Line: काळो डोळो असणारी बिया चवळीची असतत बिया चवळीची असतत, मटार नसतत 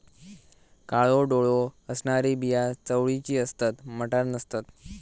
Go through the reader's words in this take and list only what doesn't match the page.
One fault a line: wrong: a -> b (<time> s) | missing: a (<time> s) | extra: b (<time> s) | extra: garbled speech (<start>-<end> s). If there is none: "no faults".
missing: बिया चवळीची असतत (3.9 s)